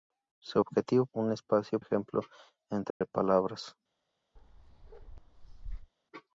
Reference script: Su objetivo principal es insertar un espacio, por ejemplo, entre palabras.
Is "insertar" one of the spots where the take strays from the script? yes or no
yes